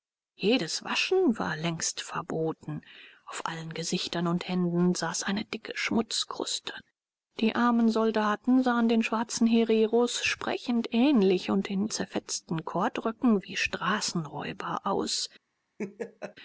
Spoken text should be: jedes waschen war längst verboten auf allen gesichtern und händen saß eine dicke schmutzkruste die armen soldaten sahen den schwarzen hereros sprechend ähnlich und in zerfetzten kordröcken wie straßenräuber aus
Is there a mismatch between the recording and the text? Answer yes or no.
no